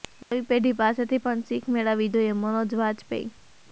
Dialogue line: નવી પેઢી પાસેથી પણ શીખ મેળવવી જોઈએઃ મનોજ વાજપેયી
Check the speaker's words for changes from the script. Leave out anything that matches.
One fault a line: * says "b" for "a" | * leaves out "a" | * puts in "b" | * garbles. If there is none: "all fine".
all fine